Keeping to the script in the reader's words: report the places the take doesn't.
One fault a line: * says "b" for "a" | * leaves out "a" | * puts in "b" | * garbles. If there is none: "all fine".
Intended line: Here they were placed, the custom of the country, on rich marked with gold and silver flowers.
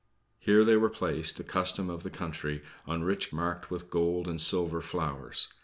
all fine